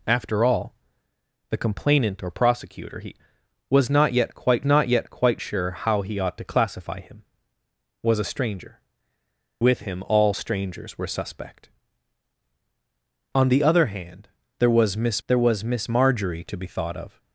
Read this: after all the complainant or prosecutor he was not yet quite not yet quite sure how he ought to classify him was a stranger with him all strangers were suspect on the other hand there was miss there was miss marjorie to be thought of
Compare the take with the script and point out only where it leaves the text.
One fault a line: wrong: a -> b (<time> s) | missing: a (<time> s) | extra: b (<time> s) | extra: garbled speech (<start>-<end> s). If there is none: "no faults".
no faults